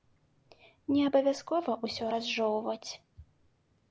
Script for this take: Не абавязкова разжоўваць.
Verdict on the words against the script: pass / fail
fail